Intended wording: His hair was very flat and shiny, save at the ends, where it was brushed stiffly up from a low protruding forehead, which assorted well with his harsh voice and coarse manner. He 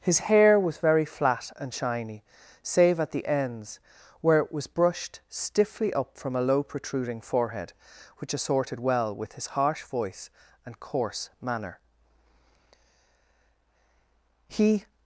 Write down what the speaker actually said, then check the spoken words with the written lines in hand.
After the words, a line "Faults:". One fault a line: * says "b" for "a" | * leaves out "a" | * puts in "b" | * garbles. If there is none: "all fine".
His hair was very flat and shiny, save at the ends, where it was brushed stiffly up from a low protruding forehead, which assorted well with his harsh voice and coarse manner. He
Faults:
all fine